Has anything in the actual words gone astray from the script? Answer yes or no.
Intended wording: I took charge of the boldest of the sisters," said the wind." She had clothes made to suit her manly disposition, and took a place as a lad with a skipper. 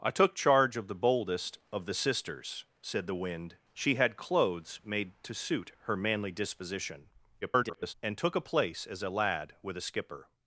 yes